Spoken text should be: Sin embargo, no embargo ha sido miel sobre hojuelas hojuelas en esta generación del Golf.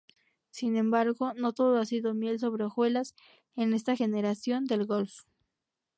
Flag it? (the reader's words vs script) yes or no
yes